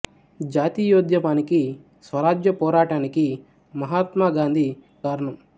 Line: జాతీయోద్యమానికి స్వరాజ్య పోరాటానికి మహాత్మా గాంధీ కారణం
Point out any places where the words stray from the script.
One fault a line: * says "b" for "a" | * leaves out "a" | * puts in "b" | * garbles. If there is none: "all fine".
all fine